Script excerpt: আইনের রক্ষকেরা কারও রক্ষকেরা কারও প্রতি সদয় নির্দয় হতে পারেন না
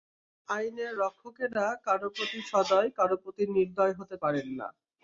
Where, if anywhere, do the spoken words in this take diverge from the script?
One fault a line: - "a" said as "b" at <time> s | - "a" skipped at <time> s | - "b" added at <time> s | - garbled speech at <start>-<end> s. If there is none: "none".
- "রক্ষকেরা" said as "প্রতি সদয়" at 2.1 s
- "সদয়" skipped at 3.4 s